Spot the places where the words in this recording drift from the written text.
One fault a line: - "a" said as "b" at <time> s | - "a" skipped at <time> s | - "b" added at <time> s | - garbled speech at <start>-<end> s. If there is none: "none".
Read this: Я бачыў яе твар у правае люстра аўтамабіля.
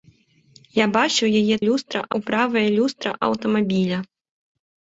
- "твар" said as "люстра" at 1.7 s